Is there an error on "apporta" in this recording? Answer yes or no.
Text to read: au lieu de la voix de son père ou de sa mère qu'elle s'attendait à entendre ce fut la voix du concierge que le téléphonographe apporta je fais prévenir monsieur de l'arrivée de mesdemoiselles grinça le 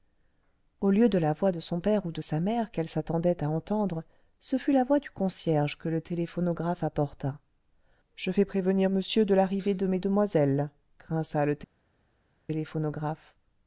no